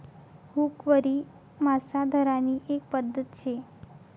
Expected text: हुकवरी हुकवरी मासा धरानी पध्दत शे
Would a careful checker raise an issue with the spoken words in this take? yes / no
yes